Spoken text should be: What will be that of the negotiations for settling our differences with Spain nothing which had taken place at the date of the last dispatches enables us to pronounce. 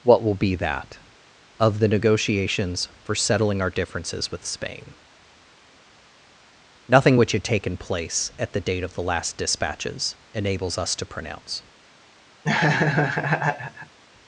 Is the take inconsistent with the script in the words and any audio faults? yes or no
yes